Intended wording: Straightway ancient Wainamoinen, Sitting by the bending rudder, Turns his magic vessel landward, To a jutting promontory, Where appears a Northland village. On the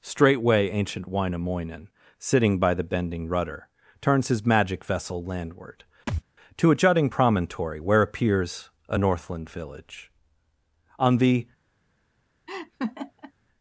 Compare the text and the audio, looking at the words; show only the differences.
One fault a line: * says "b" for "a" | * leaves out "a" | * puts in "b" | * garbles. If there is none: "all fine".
all fine